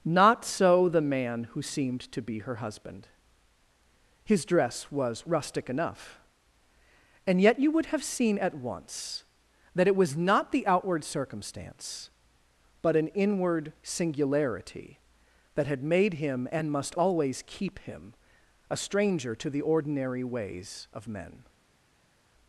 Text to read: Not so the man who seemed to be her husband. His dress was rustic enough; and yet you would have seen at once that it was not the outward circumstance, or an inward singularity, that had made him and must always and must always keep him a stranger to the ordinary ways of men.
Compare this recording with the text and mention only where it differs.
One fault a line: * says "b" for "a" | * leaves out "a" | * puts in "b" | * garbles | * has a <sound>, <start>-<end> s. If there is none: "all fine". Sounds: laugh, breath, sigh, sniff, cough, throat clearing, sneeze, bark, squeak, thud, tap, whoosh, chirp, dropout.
* says "but" for "or"
* leaves out "and must always"